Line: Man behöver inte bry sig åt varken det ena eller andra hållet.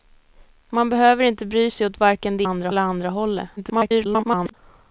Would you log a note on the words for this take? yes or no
yes